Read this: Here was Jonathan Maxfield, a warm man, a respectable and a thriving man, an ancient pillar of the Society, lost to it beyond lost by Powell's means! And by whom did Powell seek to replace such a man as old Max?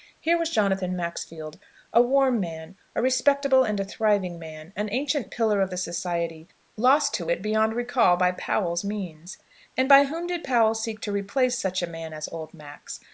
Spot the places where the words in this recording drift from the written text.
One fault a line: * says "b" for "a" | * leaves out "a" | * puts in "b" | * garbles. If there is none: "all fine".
* says "recall" for "lost"